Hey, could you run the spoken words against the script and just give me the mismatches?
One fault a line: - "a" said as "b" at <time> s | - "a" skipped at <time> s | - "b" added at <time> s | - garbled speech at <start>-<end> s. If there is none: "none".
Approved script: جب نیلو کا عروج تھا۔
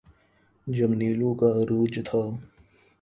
none